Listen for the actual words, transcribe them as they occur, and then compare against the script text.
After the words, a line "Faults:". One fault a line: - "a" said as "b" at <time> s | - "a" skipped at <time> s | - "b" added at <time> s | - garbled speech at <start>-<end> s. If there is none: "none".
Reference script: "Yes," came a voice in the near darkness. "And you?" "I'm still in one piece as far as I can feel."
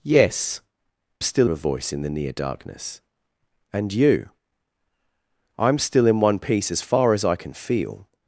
"Yes," still a voice in the near darkness. "And you?" "I'm still in one piece as far as I can feel."
Faults:
- "came" said as "still" at 1.2 s